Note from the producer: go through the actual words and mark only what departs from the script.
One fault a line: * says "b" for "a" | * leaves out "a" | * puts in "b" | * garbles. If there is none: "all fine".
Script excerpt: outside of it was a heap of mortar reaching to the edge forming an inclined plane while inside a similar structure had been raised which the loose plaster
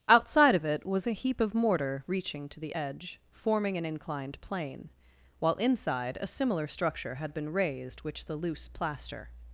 all fine